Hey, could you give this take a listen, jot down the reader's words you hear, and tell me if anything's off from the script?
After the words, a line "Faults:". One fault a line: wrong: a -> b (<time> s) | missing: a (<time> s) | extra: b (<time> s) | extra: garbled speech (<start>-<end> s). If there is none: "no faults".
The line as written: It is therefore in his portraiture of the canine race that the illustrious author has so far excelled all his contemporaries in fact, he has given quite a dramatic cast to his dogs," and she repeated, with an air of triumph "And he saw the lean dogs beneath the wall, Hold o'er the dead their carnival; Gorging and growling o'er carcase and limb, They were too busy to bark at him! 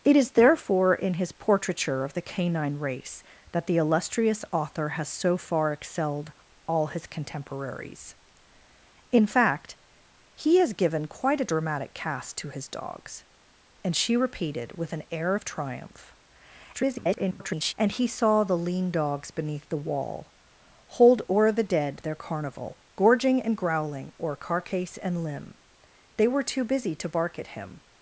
It is therefore in his portraiture of the canine race that the illustrious author has so far excelled all his contemporaries in fact, he has given quite a dramatic cast to his dogs," and she repeated, with an air of triumph [garbled] "And he saw the lean dogs beneath the wall, Hold o'er the dead their carnival; Gorging and growling o'er carcase and limb, They were too busy to bark at him!
Faults:
extra: garbled speech (16.7-17.7 s)